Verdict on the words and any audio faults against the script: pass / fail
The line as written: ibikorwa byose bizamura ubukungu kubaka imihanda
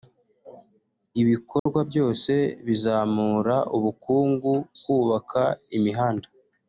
fail